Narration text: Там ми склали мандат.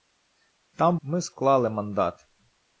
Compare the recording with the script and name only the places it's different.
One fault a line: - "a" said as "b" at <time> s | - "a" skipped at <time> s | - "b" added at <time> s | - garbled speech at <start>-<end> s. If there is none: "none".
none